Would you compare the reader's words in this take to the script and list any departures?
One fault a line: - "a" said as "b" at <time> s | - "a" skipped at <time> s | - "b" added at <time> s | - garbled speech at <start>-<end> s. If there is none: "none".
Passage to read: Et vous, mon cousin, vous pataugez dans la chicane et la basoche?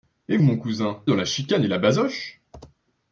- "vous" skipped at 0.4 s
- "vous pataugez" skipped at 1.0 s